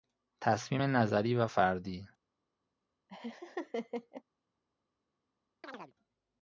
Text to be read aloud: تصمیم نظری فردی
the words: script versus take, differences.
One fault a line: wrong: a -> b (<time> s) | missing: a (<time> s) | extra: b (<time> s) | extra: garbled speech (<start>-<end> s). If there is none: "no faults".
extra: و (1.4 s)